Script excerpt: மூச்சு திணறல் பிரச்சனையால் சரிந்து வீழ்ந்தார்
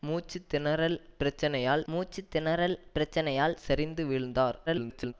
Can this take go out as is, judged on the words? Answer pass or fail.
fail